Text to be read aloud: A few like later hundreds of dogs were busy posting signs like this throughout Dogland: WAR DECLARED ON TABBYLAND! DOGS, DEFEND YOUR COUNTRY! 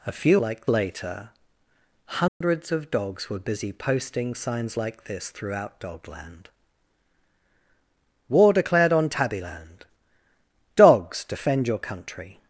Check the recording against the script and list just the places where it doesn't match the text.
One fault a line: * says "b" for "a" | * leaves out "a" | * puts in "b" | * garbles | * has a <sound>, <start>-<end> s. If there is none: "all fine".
* has a dropout, 2.3-2.4 s